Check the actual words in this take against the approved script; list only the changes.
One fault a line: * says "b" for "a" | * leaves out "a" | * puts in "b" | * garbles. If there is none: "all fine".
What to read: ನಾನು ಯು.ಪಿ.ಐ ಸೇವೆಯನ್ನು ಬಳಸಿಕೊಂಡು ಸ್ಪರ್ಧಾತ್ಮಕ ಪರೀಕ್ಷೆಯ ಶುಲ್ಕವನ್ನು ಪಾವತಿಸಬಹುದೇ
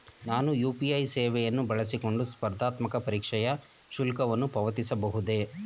all fine